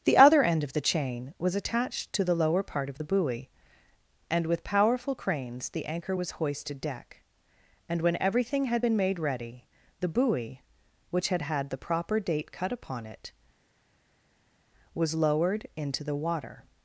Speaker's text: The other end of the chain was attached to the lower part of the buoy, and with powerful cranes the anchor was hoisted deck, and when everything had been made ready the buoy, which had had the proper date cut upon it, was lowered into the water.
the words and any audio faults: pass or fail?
pass